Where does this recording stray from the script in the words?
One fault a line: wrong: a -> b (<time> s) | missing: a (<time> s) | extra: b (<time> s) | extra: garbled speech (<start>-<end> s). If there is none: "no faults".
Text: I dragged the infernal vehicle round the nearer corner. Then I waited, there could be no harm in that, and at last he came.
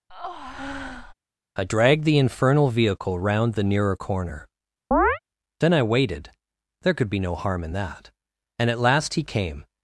no faults